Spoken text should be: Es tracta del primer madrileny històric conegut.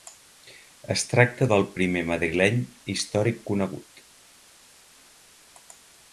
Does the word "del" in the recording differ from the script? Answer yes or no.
no